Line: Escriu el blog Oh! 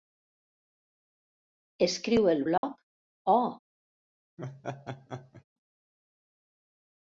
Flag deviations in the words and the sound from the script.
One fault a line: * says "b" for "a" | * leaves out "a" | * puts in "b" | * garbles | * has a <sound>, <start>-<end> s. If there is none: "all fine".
* has a dropout, 2.6-2.6 s
* has a laugh, 4.4-5.4 s